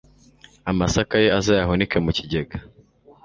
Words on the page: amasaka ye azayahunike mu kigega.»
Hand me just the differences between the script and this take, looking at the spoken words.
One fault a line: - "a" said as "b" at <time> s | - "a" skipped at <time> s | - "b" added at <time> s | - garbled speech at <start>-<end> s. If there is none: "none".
none